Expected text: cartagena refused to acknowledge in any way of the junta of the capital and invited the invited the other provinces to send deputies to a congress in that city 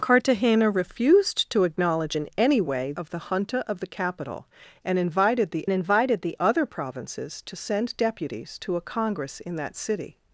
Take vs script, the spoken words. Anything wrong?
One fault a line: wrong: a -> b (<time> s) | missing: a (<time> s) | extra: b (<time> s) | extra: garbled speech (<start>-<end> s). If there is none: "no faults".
no faults